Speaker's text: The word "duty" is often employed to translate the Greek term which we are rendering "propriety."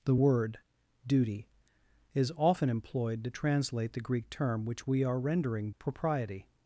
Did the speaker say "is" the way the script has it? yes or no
yes